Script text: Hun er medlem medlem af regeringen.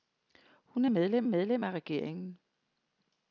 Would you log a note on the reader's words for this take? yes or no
no